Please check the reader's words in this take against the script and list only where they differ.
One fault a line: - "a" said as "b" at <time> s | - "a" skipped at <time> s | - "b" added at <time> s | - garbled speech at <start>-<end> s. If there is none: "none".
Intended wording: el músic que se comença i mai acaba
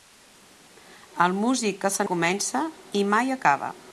none